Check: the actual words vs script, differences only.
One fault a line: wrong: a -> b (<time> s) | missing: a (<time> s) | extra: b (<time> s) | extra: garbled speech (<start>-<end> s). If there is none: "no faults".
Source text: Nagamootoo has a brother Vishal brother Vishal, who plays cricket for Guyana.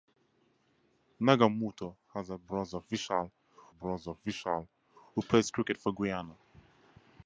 no faults